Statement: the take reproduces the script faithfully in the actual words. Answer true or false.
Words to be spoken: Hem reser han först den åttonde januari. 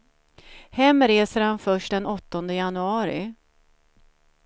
true